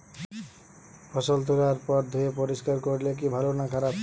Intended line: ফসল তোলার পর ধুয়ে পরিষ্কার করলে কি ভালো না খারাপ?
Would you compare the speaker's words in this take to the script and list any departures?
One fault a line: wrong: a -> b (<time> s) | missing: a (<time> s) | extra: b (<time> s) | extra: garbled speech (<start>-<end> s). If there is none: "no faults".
no faults